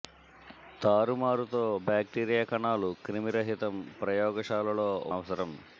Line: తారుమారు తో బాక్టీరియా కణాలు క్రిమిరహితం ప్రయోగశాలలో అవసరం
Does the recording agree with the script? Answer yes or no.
yes